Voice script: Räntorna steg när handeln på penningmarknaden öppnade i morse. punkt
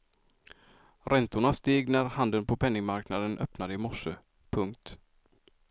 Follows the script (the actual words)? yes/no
yes